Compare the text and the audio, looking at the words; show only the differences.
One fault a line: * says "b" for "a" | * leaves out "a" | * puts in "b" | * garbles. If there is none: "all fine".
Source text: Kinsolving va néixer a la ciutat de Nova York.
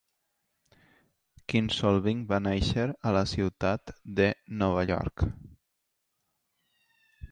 all fine